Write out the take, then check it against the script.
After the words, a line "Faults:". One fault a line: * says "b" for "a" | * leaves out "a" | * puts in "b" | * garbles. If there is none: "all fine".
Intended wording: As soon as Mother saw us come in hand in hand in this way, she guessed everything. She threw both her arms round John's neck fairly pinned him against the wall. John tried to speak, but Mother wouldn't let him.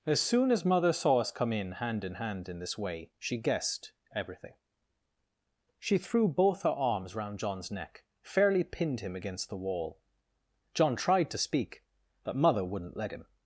As soon as Mother saw us come in hand in hand in this way, she guessed everything. She threw both her arms round John's neck fairly pinned him against the wall. John tried to speak, but Mother wouldn't let him.
Faults:
all fine